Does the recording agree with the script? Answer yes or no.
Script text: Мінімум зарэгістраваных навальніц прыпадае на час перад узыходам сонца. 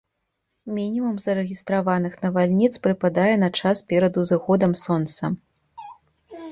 yes